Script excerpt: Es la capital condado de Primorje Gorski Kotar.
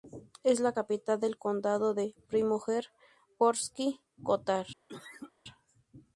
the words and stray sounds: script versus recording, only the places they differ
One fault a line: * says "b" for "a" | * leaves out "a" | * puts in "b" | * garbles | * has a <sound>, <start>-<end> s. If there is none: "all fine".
* puts in "del"
* has a cough, 4.9-5.3 s